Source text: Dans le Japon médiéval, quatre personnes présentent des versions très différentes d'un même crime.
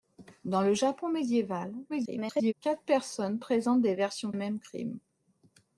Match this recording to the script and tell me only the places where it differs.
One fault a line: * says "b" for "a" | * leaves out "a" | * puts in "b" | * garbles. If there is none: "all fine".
* garbles
* leaves out "très différentes d'un"